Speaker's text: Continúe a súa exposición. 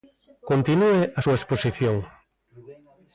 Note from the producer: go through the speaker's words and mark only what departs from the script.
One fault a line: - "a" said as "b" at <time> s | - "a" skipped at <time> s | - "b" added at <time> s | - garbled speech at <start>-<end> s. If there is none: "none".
none